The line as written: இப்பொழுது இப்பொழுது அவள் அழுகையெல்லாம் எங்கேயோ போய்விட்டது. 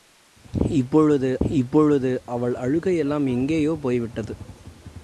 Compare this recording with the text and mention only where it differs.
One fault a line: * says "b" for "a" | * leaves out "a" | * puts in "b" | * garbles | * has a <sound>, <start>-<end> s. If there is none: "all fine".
all fine